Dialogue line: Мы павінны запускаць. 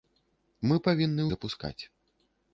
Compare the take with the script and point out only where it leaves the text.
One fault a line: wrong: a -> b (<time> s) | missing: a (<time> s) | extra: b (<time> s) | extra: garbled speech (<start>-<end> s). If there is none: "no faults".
no faults